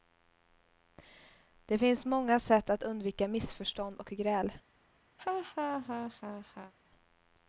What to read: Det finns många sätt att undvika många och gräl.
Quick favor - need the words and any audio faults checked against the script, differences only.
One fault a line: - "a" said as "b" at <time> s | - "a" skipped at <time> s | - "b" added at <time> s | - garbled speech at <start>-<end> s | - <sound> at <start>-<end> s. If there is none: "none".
- "många" said as "missförstånd" at 3.3 s
- laugh at 5.2-6.7 s